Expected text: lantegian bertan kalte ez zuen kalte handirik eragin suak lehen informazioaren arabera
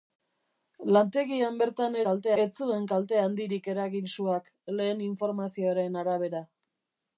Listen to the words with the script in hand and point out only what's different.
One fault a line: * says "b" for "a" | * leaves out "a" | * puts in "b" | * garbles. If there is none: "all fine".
all fine